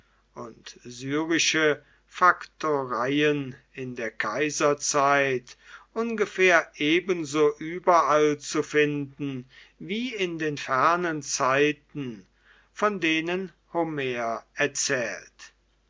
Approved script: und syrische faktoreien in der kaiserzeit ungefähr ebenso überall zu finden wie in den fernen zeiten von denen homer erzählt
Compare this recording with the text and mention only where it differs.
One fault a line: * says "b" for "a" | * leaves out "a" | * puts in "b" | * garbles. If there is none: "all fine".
all fine